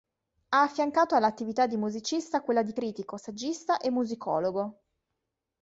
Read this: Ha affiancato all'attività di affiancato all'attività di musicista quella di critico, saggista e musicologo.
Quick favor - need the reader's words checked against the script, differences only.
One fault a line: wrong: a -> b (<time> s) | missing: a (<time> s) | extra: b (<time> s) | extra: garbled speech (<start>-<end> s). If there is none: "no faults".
missing: affiancato all'attività di (1.8 s)